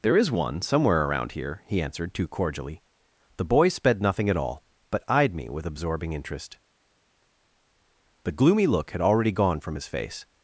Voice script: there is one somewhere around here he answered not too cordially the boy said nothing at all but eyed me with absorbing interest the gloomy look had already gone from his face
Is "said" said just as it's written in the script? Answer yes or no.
no